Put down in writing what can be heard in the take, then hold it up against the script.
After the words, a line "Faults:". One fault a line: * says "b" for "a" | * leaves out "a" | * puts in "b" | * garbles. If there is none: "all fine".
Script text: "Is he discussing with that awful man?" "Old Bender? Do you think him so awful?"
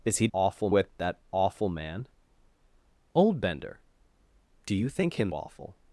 "Is he awful with that awful man?" "Old Bender? Do you think him awful?"
Faults:
* says "awful" for "discussing"
* leaves out "so"